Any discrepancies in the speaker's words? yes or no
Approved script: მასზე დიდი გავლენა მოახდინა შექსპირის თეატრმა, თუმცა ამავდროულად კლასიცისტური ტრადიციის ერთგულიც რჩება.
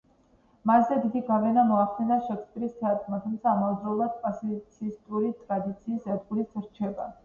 no